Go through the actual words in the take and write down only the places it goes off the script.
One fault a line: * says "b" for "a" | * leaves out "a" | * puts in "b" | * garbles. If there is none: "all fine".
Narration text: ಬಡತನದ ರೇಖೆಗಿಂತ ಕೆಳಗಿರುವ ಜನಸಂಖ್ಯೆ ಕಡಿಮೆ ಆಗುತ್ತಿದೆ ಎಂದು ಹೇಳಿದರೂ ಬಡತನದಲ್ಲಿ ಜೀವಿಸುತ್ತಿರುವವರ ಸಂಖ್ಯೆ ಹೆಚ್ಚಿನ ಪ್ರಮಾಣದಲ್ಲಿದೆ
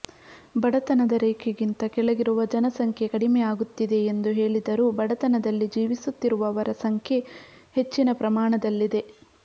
all fine